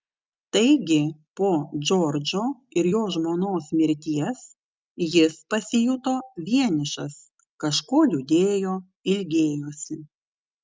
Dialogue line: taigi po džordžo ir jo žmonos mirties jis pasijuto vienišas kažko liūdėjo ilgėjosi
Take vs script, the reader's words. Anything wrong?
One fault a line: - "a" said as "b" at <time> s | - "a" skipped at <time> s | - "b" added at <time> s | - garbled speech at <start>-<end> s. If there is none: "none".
none